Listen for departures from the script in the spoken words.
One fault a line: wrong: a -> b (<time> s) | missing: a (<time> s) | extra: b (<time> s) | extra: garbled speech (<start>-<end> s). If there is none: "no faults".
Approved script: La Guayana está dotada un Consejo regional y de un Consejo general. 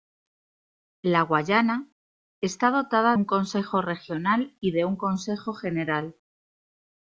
no faults